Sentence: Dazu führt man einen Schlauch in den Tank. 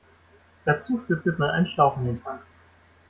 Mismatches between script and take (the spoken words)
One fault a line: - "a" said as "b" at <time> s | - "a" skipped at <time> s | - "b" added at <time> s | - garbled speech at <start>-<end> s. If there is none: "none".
- "führt" added at 1.2 s